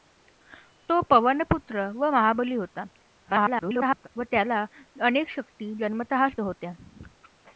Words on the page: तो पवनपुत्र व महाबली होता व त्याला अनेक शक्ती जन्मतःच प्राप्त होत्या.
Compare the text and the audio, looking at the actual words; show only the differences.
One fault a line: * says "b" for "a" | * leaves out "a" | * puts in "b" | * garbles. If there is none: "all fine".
* garbles
* leaves out "प्राप्त"